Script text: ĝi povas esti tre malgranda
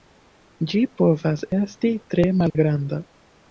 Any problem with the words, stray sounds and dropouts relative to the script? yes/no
yes